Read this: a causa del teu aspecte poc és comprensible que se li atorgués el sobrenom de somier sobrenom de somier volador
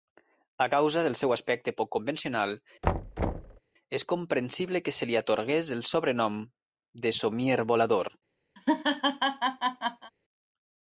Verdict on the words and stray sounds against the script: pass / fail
fail